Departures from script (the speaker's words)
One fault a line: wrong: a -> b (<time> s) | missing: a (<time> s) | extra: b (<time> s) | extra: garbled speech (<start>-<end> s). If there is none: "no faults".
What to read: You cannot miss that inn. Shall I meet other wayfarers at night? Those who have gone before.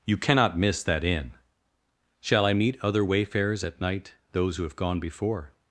no faults